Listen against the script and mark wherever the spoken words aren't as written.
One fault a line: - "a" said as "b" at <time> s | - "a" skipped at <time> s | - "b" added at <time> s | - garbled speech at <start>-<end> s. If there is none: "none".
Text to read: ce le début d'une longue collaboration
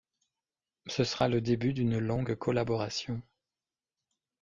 - "sera" added at 1.0 s